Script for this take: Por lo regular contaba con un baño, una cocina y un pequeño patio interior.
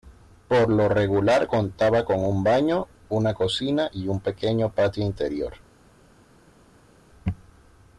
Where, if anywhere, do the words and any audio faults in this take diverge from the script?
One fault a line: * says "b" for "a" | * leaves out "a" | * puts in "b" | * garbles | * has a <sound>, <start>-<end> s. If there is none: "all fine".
all fine